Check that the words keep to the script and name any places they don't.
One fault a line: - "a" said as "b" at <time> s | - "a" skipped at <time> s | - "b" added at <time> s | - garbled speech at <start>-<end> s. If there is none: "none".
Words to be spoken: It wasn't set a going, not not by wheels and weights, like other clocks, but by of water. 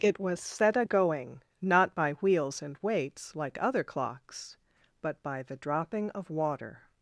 - "wasn't" said as "was" at 0.2 s
- "not" skipped at 2.0 s
- "the dropping" added at 5.4 s